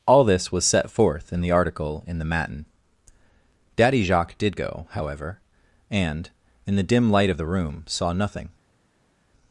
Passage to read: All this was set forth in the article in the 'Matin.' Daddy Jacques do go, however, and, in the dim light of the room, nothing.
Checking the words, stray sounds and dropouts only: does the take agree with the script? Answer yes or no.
no